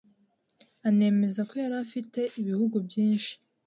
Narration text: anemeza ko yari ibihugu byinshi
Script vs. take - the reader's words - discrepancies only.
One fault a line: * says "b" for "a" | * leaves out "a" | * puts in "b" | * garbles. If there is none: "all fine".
* puts in "afite"